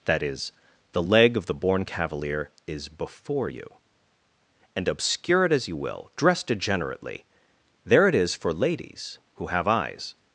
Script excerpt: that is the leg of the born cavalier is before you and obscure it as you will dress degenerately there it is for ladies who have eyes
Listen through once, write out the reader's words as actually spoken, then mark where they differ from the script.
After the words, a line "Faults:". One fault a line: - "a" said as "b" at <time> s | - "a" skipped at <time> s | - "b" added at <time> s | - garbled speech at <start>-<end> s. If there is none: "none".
that is the leg of the born cavalier is before you and obscure it as you will dress degenerately there it is for ladies who have eyes
Faults:
none